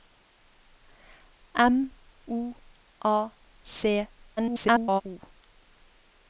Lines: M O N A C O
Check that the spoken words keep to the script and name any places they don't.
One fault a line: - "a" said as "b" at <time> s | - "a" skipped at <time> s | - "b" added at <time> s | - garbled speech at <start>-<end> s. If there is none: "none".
- "N" skipped at 2.5 s
- garbled speech at 4.4-5.0 s